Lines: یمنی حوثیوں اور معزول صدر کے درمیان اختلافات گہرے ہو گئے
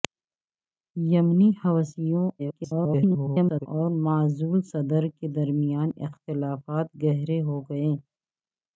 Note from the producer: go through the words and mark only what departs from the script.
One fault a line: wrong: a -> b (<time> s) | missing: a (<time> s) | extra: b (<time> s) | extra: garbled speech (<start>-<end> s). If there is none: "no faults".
extra: garbled speech (2.4-3.7 s)